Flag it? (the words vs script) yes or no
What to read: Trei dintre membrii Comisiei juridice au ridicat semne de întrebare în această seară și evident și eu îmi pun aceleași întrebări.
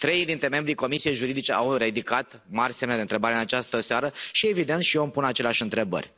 yes